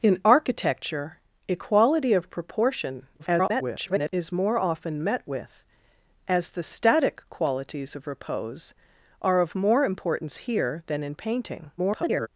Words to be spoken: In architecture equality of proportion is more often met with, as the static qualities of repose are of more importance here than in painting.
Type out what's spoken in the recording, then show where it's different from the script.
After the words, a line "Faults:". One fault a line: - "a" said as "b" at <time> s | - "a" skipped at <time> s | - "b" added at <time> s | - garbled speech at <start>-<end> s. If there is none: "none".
In architecture equality of proportion [garbled] is more often met with, as the static qualities of repose are of more importance here than in painting. [garbled]
Faults:
- garbled speech at 3.2-4.1 s
- garbled speech at 11.8-12.3 s